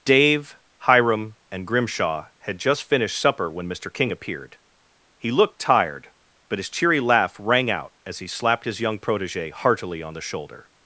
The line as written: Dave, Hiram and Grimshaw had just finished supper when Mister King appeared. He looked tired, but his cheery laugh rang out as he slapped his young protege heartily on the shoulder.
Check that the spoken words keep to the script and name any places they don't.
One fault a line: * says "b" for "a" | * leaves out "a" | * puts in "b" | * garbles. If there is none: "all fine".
all fine